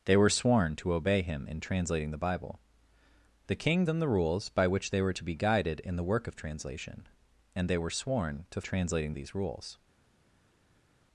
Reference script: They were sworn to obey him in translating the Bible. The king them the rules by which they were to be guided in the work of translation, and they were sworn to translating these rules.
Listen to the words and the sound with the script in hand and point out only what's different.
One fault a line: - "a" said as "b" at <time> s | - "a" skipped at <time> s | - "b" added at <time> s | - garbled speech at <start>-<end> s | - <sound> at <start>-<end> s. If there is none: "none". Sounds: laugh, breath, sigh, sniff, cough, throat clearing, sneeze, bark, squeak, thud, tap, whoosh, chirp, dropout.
none